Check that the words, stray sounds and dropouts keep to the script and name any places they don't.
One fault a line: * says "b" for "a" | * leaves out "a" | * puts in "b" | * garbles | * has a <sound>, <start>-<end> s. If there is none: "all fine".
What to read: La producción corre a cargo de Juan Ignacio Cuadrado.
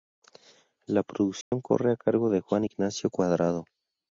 * has a dropout, 1.4-1.5 s